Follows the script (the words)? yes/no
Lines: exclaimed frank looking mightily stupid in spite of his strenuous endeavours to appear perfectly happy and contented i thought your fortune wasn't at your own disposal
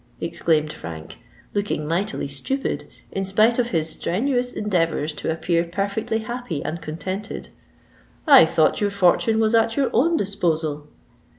no